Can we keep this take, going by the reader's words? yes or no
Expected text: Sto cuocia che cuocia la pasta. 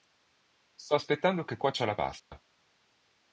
no